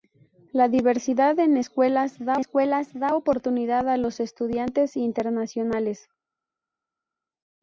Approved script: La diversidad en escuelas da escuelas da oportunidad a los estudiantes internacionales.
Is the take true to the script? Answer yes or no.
yes